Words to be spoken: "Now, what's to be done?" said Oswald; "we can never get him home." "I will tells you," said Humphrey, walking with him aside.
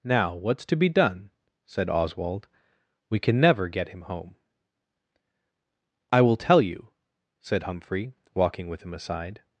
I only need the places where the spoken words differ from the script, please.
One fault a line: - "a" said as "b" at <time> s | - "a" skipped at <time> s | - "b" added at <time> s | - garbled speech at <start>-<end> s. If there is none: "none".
- "tells" said as "tell" at 6.4 s